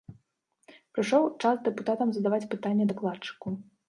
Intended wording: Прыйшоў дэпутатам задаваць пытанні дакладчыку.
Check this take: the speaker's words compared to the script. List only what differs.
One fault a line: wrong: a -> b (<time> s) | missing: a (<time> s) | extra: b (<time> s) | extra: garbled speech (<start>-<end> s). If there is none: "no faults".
extra: час (1.4 s)